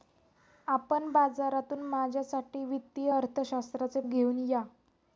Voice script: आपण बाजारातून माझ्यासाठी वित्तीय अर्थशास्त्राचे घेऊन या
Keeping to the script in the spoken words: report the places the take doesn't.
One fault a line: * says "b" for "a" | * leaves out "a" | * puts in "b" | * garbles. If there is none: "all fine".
all fine